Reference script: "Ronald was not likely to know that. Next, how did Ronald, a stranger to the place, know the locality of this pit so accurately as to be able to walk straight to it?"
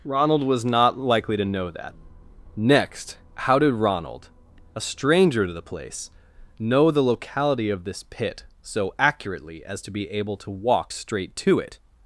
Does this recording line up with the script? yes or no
yes